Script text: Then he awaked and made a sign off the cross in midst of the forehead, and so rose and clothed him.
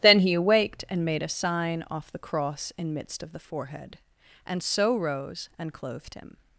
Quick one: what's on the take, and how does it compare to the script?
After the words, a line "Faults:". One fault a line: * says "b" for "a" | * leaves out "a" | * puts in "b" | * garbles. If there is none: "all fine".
Then he awaked and made a sign off the cross in midst of the forehead, and so rose and clothed him.
Faults:
all fine